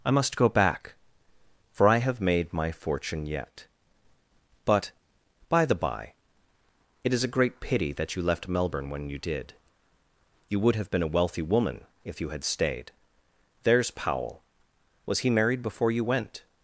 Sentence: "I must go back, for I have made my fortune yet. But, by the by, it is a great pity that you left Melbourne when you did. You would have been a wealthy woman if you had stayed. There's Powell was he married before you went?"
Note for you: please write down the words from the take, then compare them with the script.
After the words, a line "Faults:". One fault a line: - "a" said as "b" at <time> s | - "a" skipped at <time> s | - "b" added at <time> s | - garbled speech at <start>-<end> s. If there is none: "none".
"I must go back, for I have made my fortune yet. But, by the by, it is a great pity that you left Melbourne when you did. You would have been a wealthy woman if you had stayed. There's Powell was he married before you went?"
Faults:
none